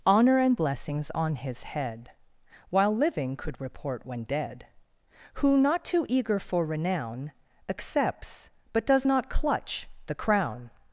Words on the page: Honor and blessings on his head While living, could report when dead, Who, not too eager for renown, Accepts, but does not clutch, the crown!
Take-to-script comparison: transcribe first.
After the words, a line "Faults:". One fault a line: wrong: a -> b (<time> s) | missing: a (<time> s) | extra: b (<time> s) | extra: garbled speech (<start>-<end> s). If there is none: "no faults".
Honor and blessings on his head While living, could report when dead, Who, not too eager for renown, Accepts, but does not clutch, the crown!
Faults:
no faults